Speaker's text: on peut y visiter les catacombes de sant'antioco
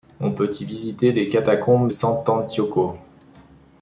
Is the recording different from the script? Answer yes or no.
yes